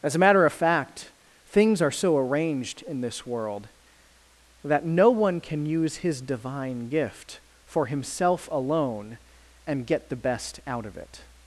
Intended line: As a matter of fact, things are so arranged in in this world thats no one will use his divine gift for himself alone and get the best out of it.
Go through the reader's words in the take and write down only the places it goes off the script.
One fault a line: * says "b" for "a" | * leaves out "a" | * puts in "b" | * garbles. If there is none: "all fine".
* leaves out "in"
* says "that" for "thats"
* says "can" for "will"